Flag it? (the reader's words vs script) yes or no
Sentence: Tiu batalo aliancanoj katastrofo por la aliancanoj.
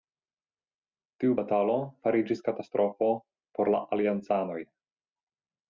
yes